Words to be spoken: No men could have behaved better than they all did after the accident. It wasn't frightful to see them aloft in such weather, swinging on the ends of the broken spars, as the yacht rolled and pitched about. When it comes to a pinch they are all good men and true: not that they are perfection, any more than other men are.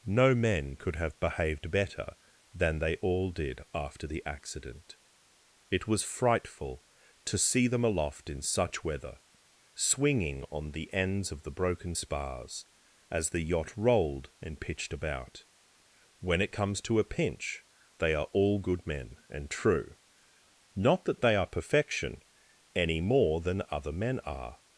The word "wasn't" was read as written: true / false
false